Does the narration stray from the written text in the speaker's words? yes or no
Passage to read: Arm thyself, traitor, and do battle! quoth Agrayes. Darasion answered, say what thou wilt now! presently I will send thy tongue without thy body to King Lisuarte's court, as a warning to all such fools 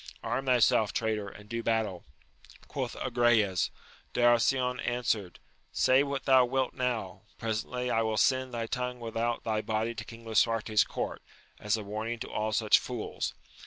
no